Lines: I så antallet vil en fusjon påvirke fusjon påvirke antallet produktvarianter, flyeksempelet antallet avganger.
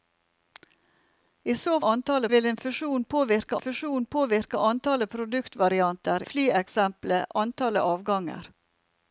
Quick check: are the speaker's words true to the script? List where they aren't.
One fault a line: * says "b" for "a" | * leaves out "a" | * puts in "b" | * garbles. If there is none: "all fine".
all fine